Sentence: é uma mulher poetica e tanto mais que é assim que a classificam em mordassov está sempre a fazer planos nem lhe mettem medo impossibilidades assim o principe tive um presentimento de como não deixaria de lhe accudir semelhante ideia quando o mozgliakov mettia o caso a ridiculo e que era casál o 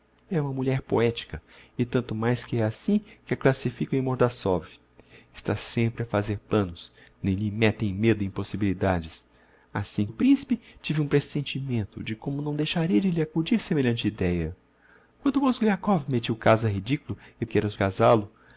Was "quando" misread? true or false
false